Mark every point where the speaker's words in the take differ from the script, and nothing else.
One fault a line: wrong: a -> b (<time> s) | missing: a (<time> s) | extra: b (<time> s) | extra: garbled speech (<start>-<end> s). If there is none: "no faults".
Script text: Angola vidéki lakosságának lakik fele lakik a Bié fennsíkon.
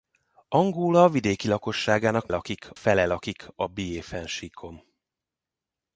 no faults